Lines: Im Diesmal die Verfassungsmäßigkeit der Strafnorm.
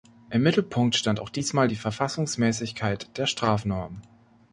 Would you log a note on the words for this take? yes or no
yes